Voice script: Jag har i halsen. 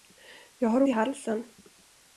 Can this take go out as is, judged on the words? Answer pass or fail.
pass